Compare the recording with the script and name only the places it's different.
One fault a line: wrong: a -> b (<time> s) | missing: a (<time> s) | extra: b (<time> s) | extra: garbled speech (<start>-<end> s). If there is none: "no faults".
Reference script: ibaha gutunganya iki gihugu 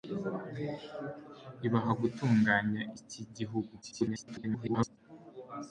extra: garbled speech (3.8-5.0 s)